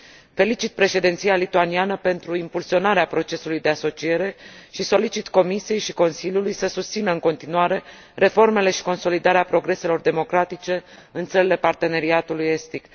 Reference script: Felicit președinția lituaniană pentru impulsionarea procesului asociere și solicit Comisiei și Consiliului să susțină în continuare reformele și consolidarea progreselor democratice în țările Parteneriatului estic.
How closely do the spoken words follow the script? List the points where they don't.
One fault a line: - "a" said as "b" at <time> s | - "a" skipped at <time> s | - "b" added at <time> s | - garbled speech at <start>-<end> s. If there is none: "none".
- "de" added at 3.6 s